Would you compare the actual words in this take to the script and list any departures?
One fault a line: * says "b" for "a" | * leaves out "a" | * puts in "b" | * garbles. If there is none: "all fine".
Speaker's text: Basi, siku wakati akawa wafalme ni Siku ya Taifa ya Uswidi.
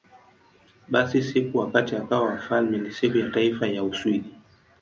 all fine